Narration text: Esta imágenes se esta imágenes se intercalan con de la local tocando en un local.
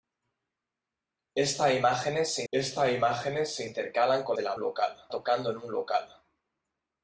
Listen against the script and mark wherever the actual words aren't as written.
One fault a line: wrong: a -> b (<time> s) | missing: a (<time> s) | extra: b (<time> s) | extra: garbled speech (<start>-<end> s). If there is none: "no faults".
no faults